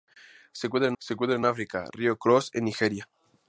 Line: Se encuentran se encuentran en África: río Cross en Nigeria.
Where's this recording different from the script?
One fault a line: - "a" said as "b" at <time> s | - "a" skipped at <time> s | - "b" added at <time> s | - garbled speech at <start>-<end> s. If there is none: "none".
none